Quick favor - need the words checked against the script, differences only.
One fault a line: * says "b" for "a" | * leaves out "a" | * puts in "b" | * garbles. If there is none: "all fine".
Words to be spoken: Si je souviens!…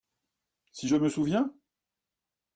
* puts in "me"